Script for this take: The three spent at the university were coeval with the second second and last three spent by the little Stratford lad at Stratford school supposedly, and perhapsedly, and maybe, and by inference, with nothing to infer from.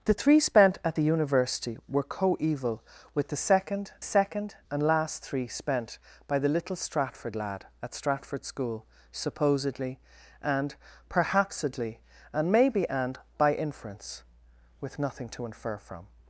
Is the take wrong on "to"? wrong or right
right